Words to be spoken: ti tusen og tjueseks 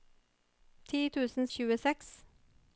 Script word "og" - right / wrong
right